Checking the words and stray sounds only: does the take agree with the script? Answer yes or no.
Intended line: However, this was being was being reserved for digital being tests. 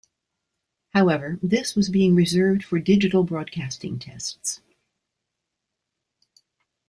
no